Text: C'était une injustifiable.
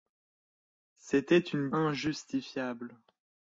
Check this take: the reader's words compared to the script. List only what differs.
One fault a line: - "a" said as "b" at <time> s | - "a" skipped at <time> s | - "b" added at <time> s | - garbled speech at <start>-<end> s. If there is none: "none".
none